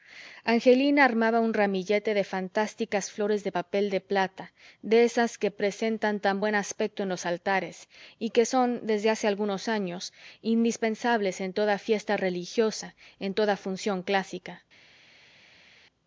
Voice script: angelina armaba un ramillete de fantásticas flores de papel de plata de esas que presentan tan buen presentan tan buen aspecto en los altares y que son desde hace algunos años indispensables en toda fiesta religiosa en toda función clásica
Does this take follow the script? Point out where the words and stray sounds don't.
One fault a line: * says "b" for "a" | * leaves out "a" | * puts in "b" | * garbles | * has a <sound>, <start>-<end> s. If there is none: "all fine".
* leaves out "presentan tan buen"